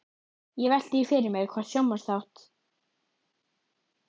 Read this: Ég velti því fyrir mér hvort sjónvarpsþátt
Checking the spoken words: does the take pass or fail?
pass